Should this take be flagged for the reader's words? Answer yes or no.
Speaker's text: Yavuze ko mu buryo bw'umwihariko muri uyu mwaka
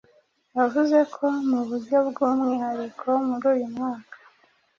no